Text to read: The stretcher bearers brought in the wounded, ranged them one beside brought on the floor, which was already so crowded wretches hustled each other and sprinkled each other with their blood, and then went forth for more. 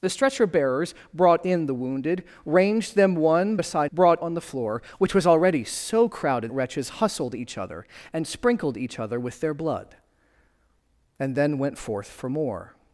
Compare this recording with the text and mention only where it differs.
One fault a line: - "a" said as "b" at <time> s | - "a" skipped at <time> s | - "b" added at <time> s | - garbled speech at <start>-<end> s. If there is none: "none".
none